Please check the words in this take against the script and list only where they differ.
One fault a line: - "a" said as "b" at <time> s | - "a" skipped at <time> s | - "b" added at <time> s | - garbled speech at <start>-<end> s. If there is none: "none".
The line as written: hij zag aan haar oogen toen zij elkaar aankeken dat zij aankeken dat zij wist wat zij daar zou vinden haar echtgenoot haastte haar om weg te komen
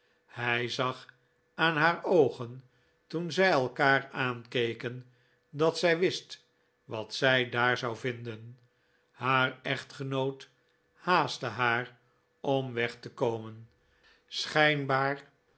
- "aankeken dat zij" skipped at 6.0 s